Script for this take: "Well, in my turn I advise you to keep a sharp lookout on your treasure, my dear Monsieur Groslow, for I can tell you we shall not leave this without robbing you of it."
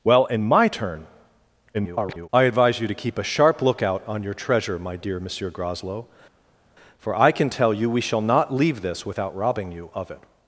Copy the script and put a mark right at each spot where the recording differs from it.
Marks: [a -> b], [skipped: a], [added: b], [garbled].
"Well, in my turn [garbled] I advise you to keep a sharp lookout on your treasure, my dear Monsieur Groslow, for I can tell you we shall not leave this without robbing you of it."